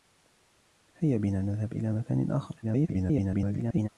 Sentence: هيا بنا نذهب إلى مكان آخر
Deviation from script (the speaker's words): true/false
true